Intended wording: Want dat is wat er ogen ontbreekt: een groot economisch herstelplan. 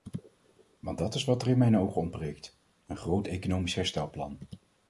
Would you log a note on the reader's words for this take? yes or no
yes